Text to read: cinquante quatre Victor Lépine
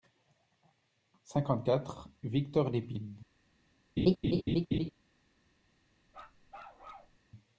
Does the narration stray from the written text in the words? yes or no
no